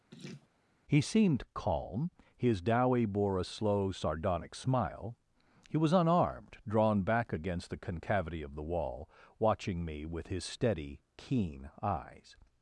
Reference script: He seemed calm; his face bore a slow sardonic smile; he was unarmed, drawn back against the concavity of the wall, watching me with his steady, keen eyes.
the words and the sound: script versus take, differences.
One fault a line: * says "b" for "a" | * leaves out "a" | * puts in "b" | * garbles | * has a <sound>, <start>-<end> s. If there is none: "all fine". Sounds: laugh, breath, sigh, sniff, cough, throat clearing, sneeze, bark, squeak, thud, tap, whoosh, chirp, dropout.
* has a laugh, 0.1-0.5 s
* says "dowie" for "face"